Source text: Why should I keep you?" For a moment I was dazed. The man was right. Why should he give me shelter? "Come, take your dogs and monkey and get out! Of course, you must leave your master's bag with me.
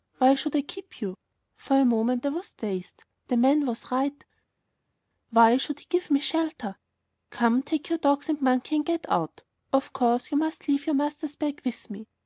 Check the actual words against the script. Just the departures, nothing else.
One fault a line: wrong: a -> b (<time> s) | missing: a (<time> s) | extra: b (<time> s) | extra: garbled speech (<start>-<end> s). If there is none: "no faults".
no faults